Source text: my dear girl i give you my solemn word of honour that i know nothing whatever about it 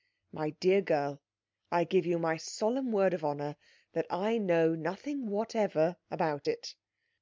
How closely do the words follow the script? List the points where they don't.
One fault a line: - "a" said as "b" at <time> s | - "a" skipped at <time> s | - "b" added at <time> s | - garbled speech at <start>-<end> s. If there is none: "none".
none